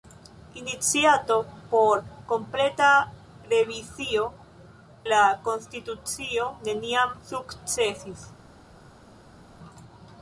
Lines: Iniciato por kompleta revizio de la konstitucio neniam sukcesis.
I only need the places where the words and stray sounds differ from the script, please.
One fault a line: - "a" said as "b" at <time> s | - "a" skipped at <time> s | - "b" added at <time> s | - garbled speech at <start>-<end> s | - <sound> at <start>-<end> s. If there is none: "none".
- "de" skipped at 4.3 s